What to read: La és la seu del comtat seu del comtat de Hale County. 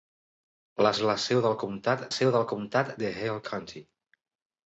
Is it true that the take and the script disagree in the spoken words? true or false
false